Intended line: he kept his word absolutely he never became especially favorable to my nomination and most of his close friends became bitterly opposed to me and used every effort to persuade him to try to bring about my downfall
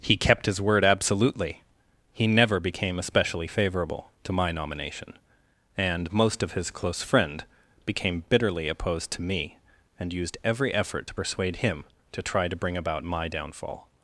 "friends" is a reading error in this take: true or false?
true